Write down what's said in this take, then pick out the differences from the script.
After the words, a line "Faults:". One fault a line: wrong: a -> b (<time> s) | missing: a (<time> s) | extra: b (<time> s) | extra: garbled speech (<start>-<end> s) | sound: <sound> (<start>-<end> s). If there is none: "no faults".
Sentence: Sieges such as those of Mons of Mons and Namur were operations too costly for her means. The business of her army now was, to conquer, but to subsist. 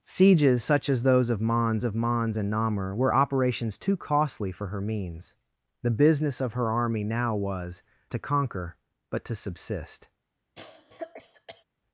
Sieges such as those of Mons of Mons and Namur were operations too costly for her means. The business of her army now was, to conquer, but to subsist.
Faults:
sound: cough (10.6-11.6 s)